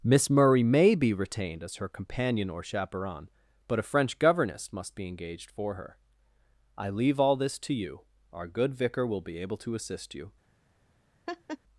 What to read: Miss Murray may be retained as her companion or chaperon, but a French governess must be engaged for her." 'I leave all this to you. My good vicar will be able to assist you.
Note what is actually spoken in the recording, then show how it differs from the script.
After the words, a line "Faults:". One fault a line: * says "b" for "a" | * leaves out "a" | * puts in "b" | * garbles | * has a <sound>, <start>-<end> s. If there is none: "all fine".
Miss Murray may be retained as her companion or chaperon, but a French governess must be engaged for her." 'I leave all this to you. Our good vicar will be able to assist you.
Faults:
* says "Our" for "My"
* has a laugh, 11.3-11.6 s